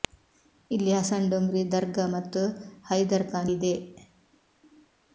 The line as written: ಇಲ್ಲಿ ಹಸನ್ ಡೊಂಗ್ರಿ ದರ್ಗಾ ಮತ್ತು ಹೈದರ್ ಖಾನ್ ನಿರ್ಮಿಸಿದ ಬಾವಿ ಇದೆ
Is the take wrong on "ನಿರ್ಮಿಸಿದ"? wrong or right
wrong